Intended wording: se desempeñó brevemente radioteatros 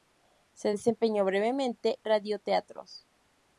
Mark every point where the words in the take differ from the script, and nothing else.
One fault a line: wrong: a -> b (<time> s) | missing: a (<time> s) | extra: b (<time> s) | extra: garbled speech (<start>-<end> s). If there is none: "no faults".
no faults